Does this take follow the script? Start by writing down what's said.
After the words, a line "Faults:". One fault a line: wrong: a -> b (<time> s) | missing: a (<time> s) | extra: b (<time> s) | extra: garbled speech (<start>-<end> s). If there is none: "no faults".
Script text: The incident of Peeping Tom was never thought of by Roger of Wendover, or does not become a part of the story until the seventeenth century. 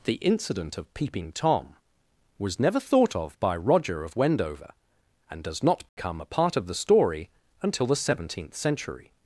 The incident of Peeping Tom was never thought of by Roger of Wendover, and does not become a part of the story until the seventeenth century.
Faults:
wrong: or -> and (5.3 s)